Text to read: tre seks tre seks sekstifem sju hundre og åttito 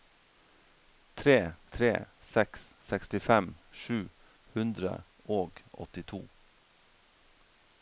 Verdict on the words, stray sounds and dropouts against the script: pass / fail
fail